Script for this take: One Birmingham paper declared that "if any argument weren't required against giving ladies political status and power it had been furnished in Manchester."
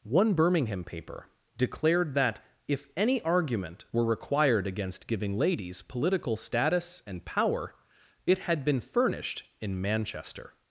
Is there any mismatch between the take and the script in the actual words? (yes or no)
yes